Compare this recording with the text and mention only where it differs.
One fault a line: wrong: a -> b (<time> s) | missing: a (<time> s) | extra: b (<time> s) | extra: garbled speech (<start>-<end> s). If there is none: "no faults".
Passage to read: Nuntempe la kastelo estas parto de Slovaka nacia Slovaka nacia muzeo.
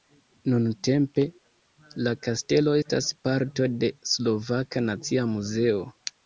missing: Slovaka nacia (5.3 s)